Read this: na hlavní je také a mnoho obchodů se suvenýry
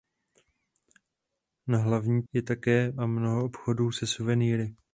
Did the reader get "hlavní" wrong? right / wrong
right